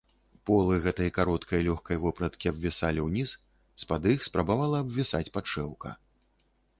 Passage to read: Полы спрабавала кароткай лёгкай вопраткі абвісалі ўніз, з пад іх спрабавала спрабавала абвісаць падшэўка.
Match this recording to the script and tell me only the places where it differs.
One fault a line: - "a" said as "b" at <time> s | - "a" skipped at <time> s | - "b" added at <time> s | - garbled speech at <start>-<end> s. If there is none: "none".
- "спрабавала" said as "гэтай" at 0.8 s
- "спрабавала" skipped at 4.8 s